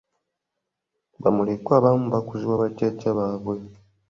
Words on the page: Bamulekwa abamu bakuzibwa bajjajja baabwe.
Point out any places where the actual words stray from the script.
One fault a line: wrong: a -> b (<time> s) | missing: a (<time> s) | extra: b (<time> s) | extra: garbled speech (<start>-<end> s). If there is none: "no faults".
no faults